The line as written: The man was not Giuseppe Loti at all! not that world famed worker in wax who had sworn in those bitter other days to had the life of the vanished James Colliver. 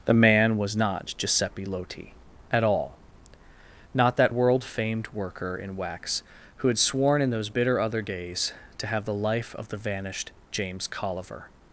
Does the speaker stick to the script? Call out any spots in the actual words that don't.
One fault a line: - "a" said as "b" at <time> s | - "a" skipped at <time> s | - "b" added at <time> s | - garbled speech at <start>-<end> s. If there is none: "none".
- "had" said as "have" at 8.9 s